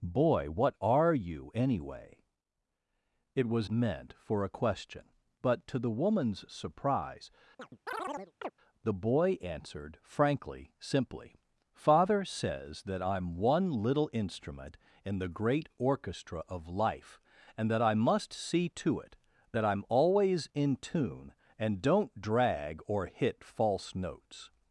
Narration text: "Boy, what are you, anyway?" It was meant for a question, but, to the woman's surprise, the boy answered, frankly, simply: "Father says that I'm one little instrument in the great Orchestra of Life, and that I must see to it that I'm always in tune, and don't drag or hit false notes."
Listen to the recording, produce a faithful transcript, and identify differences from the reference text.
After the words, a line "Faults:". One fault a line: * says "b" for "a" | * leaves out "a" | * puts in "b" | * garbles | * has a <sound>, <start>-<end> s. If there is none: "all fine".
"Boy, what are you, anyway?" It was meant for a question, but, to the woman's surprise, the boy answered, frankly, simply: "Father says that I'm one little instrument in the great Orchestra of Life, and that I must see to it that I'm always in tune, and don't drag or hit false notes."
Faults:
* has a chirp, 7.6-8.5 s